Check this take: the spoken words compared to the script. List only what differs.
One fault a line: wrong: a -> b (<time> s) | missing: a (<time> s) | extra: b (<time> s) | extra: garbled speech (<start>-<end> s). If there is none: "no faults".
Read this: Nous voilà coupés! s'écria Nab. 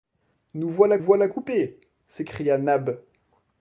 extra: voilà (1.0 s)